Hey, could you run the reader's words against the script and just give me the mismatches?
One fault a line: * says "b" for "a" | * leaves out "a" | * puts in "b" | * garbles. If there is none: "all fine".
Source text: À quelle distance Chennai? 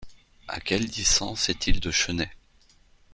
* puts in "est il de"